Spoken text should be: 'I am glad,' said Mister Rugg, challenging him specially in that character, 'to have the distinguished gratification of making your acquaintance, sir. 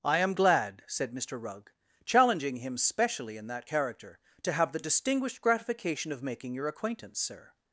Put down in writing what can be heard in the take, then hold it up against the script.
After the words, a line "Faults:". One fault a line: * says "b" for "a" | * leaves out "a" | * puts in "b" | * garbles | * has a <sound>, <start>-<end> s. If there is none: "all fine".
'I am glad,' said Mister Rugg, challenging him specially in that character, 'to have the distinguished gratification of making your acquaintance, sir.
Faults:
all fine